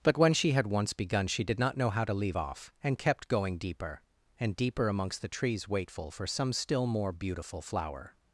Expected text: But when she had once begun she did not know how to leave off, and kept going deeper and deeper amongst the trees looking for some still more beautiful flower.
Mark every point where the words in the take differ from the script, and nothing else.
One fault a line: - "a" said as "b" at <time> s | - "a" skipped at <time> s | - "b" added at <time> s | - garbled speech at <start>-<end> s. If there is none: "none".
- "looking" said as "waitful" at 5.7 s